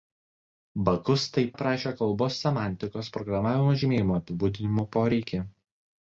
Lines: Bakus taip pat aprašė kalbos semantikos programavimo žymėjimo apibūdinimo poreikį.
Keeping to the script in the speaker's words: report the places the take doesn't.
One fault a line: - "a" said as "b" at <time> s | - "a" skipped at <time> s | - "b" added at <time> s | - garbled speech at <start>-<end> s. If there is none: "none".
- "pat" skipped at 1.5 s